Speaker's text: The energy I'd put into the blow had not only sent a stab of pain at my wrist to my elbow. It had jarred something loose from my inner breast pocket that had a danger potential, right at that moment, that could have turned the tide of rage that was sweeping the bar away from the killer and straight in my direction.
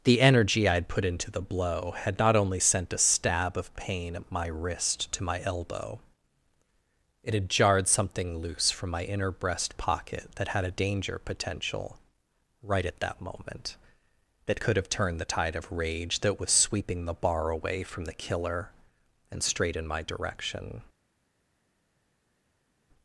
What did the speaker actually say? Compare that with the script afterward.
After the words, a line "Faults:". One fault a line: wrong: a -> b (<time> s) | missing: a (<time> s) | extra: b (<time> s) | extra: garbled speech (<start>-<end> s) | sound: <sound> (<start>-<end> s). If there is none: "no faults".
The energy I'd put into the blow had not only sent a stab of pain at my wrist to my elbow. It had jarred something loose from my inner breast pocket that had a danger potential, right at that moment, that could have turned the tide of rage that was sweeping the bar away from the killer and straight in my direction.
Faults:
no faults